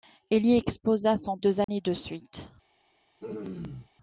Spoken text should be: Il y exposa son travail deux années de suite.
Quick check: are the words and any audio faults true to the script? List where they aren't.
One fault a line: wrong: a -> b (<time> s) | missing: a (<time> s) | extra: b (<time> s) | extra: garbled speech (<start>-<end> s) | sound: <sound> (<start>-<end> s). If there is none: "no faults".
missing: travail (1.4 s)
sound: dropout (1.6-1.7 s)
sound: throat clearing (3.2-3.9 s)